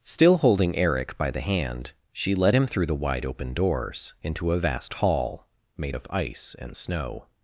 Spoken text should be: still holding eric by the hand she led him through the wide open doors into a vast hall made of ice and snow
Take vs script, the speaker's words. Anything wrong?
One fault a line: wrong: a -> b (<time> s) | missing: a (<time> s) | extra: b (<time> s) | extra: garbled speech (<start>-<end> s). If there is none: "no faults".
no faults